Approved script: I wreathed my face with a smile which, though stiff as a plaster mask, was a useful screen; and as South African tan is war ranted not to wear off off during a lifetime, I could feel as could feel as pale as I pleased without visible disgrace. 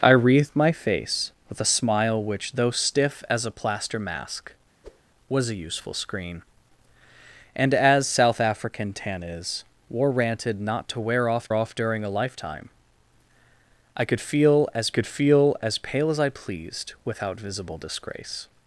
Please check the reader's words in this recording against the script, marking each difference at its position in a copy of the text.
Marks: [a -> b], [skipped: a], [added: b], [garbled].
I wreathed my face with a smile which, though stiff as a plaster mask, was a useful screen; and as South African tan is war ranted not to wear off off during a lifetime, I could feel as could feel as pale as I pleased without visible disgrace.